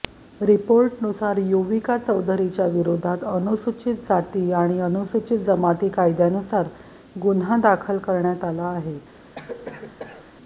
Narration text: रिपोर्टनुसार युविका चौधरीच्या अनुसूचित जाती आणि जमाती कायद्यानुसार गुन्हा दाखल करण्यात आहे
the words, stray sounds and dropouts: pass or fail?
fail